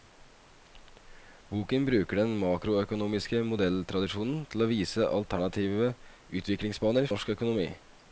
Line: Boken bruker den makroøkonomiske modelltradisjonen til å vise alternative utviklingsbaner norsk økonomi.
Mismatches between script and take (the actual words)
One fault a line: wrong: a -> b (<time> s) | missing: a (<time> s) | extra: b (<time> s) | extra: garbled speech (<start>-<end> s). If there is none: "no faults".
no faults